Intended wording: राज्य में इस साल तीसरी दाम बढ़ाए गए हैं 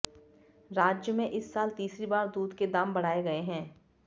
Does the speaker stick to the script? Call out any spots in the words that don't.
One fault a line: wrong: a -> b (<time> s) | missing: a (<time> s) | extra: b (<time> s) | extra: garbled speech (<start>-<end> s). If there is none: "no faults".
extra: बार दूध के (2.1 s)